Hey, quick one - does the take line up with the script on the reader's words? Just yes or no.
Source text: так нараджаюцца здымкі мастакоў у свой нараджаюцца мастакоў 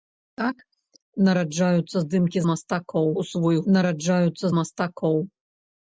yes